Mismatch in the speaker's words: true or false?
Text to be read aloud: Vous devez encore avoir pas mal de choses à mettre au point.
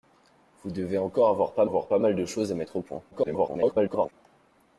true